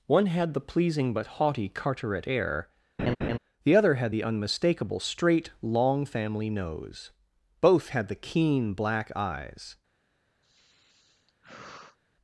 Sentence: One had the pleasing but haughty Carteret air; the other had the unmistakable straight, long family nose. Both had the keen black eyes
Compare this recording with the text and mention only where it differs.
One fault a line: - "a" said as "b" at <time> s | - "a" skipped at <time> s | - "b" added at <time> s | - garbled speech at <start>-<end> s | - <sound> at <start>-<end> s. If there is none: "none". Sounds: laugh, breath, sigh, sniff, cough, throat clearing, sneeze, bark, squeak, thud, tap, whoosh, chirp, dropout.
- laugh at 3.0-3.4 s
- sigh at 10.4-12.0 s